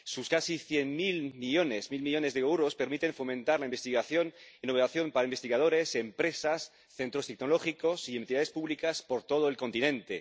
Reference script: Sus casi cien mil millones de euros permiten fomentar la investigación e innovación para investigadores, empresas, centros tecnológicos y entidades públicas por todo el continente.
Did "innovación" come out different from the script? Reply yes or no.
no